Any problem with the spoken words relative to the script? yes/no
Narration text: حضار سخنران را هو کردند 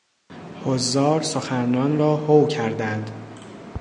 no